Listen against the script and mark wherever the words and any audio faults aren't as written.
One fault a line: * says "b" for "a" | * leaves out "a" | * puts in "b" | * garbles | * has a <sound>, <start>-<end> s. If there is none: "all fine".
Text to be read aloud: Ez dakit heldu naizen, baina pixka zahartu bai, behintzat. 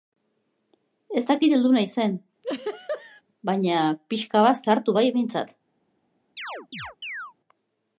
* has a laugh, 2.4-3.2 s
* puts in "bat"
* has a chirp, 6.4-7.3 s